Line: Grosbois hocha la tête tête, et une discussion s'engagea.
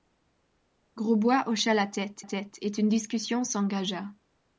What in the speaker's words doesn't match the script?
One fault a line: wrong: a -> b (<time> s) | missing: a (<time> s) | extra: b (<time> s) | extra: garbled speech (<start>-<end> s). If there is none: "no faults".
no faults